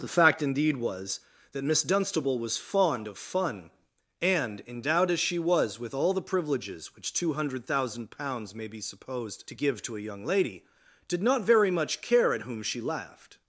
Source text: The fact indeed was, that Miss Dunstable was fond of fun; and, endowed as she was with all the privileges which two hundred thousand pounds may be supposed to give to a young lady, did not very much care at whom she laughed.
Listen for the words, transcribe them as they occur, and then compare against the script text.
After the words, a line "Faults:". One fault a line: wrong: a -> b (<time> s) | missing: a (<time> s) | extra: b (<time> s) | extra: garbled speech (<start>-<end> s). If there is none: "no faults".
The fact indeed was, that Miss Dunstable was fond of fun; and, endowed as she was with all the privileges which two hundred thousand pounds may be supposed to give to a young lady, did not very much care at whom she laughed.
Faults:
no faults